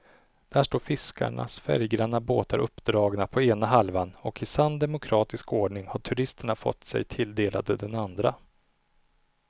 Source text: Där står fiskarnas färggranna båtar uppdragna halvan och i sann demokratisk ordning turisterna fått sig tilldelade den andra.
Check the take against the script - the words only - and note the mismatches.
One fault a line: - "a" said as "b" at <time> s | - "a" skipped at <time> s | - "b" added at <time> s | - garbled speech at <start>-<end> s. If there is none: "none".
- "på ena" added at 3.3 s
- "har" added at 5.9 s